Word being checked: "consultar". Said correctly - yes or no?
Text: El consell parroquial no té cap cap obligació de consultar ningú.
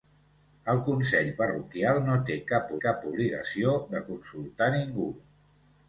yes